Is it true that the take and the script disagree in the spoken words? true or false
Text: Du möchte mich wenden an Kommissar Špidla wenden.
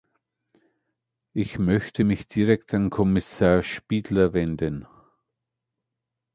true